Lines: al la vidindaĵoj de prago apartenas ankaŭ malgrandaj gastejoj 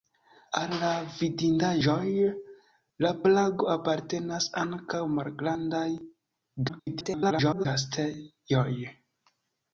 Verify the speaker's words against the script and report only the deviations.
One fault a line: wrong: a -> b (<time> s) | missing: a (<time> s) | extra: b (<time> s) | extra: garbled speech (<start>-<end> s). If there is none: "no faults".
extra: garbled speech (6.7-7.7 s)